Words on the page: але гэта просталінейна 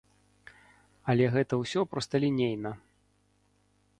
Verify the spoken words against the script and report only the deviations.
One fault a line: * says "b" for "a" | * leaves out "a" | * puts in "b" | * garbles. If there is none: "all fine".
* puts in "ўсё"